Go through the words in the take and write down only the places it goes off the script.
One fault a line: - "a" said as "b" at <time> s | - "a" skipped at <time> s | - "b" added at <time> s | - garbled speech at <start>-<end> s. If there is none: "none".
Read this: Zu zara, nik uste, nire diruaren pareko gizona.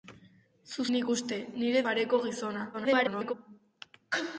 - "zara" skipped at 0.8 s
- "diruaren" skipped at 1.8 s
- garbled speech at 2.7-3.3 s